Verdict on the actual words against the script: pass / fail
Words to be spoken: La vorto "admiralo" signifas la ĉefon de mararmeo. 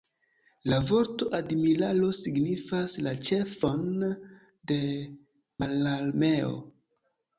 pass